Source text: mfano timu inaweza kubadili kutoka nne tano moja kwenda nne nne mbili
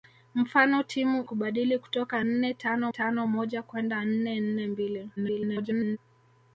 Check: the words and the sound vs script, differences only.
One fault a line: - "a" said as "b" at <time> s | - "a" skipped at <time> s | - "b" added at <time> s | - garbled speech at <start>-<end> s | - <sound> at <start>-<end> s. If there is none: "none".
- "inaweza" skipped at 1.2 s
- "tano" added at 2.9 s
- garbled speech at 5.2-6.0 s